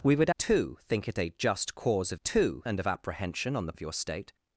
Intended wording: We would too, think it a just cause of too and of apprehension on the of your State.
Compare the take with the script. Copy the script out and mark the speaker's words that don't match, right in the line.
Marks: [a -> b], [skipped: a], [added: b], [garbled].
We would too, think it a just cause of too and of apprehension on the of your State.